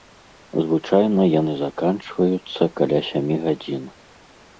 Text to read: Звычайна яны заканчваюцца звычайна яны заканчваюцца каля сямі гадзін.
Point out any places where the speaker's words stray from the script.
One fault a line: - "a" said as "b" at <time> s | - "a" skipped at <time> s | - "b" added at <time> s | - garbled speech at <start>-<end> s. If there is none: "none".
- "звычайна яны заканчваюцца" skipped at 2.6 s